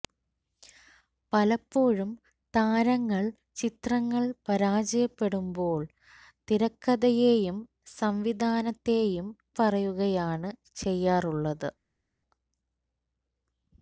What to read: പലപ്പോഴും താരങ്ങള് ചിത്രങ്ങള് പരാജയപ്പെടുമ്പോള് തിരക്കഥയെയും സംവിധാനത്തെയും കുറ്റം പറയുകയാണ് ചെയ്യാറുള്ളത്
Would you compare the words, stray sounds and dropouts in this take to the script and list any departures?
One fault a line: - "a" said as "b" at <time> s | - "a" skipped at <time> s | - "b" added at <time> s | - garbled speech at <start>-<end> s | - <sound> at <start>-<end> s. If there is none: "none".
- "കുറ്റം" skipped at 9.3 s